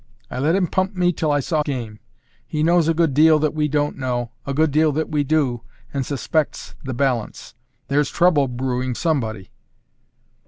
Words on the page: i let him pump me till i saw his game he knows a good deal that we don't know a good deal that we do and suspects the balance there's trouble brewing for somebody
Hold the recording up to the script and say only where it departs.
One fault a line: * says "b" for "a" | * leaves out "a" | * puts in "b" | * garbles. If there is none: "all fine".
* leaves out "his"
* leaves out "for"